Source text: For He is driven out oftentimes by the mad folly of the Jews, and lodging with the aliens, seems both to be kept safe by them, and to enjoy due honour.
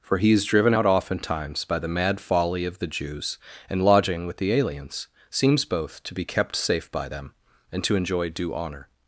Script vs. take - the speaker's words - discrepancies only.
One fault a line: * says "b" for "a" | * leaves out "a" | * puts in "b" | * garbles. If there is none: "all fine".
all fine